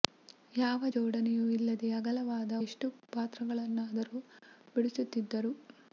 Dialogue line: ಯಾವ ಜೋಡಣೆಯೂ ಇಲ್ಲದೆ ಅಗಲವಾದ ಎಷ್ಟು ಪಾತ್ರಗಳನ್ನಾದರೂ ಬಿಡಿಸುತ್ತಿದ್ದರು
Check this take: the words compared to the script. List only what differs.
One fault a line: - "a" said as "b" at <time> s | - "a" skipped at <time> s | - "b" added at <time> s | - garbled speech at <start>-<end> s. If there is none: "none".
none